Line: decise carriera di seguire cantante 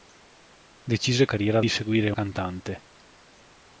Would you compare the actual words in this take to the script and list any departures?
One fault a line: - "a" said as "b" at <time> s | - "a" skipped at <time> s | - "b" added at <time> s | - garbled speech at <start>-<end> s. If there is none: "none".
none